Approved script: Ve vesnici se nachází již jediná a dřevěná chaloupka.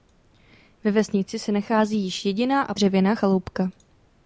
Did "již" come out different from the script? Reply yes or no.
no